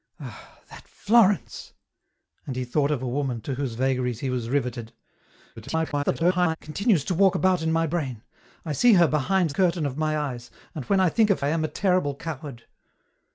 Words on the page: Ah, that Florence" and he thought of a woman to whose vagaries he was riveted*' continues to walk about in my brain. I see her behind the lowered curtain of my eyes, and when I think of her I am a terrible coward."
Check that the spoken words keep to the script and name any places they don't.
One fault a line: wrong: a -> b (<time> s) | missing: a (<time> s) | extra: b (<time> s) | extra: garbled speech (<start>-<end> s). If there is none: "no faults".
extra: garbled speech (5.6-6.6 s)
missing: the lowered (9.5 s)
missing: her (11.4 s)